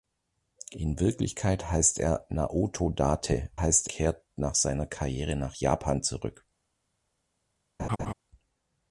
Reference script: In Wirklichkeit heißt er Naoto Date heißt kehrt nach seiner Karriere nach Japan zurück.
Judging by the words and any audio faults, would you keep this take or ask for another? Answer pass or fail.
fail